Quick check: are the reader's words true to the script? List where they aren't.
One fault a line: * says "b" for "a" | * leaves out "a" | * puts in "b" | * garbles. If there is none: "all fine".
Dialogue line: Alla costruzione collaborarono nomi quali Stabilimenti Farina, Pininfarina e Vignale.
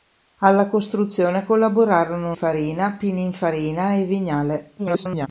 * leaves out "nomi quali Stabilimenti"
* garbles